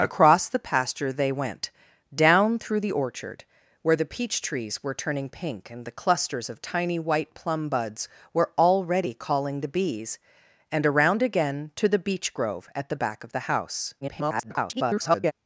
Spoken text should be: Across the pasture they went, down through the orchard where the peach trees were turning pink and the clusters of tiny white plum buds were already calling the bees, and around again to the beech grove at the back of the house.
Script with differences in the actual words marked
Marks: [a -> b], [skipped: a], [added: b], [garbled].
Across the pasture they went, down through the orchard where the peach trees were turning pink and the clusters of tiny white plum buds were already calling the bees, and around again to the beech grove at the back of the house. [garbled]